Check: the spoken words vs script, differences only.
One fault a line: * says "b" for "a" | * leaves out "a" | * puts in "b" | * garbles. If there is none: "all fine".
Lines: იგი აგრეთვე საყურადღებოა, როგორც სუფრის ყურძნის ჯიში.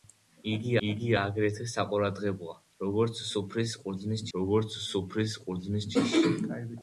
* puts in "იგი"
* puts in "როგორც სუფრის ყურძნის"